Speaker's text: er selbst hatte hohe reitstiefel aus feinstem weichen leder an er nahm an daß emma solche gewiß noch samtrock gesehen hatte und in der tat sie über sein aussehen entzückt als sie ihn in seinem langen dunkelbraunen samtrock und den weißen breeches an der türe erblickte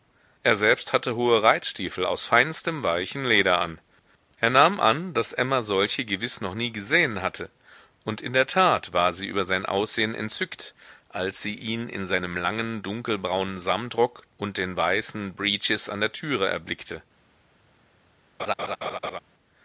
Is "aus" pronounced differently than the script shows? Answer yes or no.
no